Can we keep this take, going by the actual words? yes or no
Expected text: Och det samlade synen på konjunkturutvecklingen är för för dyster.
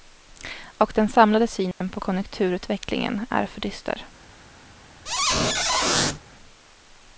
no